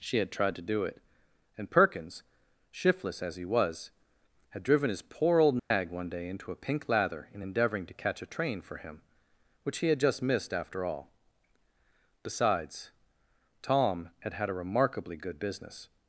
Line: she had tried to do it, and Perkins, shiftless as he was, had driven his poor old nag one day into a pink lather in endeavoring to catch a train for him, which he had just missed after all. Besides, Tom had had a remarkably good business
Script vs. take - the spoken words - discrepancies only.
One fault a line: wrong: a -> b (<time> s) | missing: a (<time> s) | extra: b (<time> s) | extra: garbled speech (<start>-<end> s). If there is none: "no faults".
no faults